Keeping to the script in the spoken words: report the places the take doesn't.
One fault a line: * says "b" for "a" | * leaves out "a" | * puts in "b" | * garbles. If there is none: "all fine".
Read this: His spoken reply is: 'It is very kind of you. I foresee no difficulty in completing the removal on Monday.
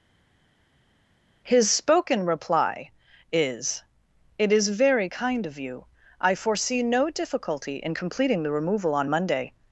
all fine